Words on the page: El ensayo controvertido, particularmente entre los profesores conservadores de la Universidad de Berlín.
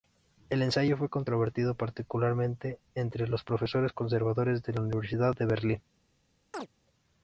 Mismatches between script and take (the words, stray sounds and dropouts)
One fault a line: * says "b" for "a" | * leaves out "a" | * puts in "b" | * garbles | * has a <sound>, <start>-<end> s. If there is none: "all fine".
* puts in "fue"
* has a chirp, 6.5-6.7 s